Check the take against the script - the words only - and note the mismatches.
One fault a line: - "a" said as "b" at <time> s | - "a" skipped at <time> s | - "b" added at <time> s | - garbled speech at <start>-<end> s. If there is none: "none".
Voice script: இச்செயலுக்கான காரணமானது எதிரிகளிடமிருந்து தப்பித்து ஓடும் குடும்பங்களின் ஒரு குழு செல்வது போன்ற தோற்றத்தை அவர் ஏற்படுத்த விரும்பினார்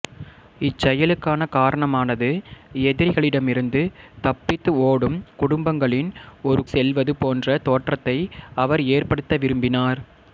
- "குழு" skipped at 6.6 s